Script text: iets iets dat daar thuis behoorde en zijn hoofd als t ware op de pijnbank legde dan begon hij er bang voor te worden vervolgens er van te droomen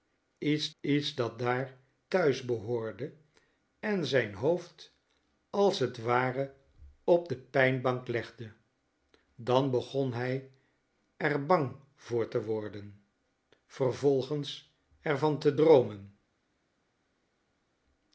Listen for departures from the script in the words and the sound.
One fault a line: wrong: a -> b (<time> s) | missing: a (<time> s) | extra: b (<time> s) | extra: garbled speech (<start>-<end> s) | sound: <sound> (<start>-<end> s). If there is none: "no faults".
no faults